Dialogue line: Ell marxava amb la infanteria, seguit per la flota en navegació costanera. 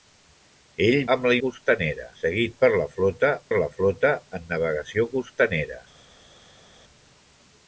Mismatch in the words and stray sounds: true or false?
true